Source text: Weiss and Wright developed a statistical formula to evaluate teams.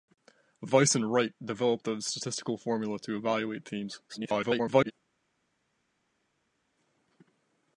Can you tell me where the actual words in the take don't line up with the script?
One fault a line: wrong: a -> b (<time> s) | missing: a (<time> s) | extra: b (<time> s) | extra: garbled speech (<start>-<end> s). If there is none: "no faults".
extra: garbled speech (4.1-4.9 s)